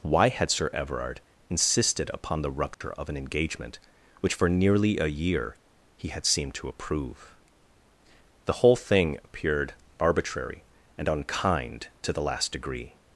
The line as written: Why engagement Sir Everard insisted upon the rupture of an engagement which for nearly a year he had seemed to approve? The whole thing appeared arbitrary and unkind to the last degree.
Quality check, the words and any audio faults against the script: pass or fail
fail